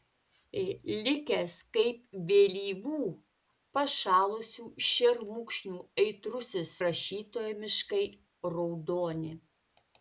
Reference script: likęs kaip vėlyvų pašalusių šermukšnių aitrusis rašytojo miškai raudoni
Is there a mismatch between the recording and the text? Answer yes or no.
no